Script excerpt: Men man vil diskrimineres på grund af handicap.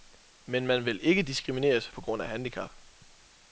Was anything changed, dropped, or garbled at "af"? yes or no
no